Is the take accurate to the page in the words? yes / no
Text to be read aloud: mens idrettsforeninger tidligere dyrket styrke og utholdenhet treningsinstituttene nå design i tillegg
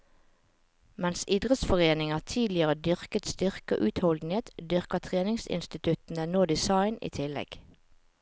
no